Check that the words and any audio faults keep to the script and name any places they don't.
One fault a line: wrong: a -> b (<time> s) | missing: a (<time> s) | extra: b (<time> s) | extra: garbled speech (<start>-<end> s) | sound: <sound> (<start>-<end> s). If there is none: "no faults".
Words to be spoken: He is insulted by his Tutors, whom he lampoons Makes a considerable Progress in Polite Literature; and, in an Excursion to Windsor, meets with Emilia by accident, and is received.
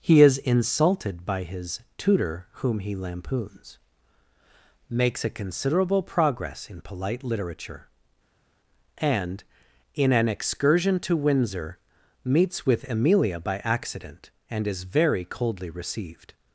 wrong: Tutors -> Tutor (2.0 s)
extra: very coldly (14.8 s)